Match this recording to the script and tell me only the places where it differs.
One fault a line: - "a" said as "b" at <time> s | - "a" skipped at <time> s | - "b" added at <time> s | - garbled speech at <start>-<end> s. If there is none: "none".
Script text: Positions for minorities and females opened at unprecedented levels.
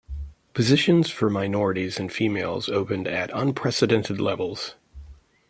none